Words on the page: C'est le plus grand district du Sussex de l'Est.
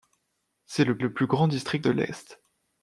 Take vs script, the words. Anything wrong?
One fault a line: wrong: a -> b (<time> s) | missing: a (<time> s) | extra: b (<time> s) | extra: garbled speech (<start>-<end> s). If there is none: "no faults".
extra: le (1.0 s)
missing: du Sussex (1.8 s)